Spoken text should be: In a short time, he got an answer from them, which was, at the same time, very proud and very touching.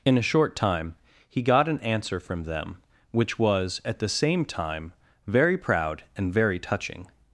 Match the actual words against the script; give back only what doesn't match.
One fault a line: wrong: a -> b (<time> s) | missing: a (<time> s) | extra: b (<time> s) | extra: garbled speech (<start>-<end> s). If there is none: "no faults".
no faults